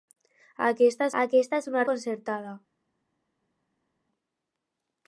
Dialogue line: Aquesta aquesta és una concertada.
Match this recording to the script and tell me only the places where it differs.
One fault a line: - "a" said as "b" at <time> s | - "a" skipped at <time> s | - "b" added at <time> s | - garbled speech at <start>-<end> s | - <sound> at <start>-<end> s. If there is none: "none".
none